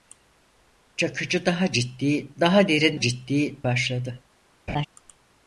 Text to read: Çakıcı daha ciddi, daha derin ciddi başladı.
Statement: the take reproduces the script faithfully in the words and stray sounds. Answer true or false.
false